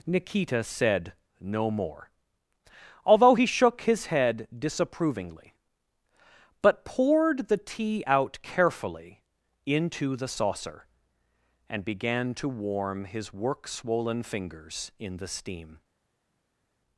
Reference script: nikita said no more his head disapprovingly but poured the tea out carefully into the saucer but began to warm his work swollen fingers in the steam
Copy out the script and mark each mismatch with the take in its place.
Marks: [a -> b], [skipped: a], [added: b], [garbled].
nikita said no more [added: although he shook] his head disapprovingly but poured the tea out carefully into the saucer [but -> and] began to warm his work swollen fingers in the steam